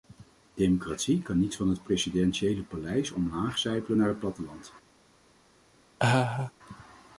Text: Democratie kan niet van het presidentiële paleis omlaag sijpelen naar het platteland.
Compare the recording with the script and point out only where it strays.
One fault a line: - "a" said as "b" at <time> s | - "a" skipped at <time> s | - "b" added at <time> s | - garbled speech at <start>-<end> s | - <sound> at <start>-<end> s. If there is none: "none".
- laugh at 6.0-6.5 s